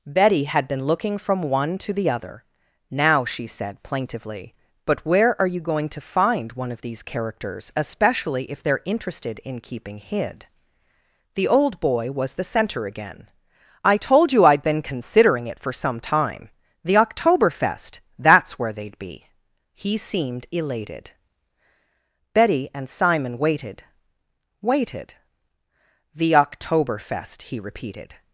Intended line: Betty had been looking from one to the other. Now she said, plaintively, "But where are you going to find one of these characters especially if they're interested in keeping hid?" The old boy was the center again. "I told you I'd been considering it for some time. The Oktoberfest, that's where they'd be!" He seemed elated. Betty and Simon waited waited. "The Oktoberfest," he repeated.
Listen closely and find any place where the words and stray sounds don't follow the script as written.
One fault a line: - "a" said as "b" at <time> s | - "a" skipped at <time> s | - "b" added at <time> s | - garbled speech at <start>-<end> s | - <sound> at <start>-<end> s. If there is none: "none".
none